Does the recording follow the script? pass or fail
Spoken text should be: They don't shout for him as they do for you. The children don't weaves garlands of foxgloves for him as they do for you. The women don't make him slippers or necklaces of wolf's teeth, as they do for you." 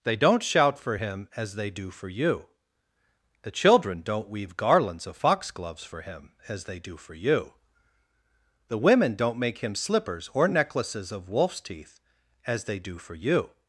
fail